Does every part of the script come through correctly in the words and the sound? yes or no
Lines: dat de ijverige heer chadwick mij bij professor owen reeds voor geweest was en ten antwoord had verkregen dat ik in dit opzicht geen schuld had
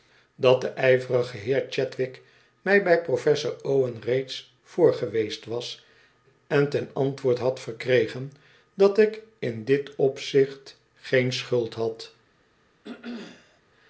no